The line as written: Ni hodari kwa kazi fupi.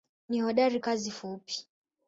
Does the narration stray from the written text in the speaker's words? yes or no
yes